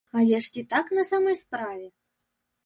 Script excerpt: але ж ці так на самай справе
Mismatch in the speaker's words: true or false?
false